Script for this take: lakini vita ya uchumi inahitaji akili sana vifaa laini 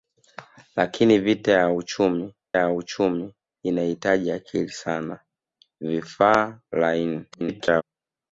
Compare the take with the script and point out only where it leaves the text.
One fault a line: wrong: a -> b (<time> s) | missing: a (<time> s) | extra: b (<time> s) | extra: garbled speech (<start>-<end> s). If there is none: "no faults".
extra: ya uchumi (2.5 s)
extra: garbled speech (7.3-7.8 s)